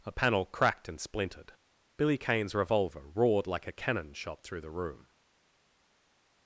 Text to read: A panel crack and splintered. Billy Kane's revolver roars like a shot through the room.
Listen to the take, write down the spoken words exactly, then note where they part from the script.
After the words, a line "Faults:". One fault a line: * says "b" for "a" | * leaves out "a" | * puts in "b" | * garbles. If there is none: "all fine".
A panel cracked and splintered. Billy Kane's revolver roared like a cannon shot through the room.
Faults:
* says "cracked" for "crack"
* says "roared" for "roars"
* puts in "cannon"